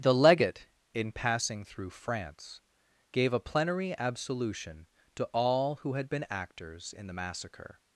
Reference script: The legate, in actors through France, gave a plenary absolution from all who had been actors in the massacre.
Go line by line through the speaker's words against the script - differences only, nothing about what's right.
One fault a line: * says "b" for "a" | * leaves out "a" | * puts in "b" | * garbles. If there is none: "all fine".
* says "passing" for "actors"
* says "to" for "from"